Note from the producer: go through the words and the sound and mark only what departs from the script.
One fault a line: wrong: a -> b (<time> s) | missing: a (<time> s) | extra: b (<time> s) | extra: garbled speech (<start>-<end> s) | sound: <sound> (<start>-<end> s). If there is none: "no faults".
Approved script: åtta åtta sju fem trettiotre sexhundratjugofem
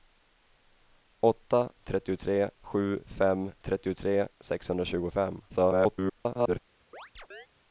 wrong: åtta -> trettiotre (1.8 s)
extra: garbled speech (5.5-6.6 s)
sound: chirp (6.9-7.5 s)